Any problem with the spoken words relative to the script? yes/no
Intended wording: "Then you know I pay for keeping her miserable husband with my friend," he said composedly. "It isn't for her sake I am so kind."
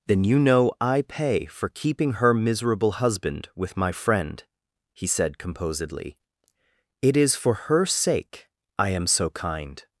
yes